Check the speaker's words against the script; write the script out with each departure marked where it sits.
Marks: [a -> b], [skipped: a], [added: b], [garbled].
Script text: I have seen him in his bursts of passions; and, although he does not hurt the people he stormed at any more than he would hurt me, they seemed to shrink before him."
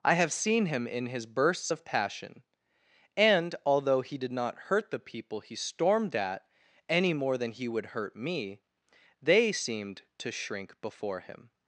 I have seen him in his bursts of [passions; -> passion] and, although he [does -> did] not hurt the people he stormed at any more than he would hurt me, they seemed to shrink before him."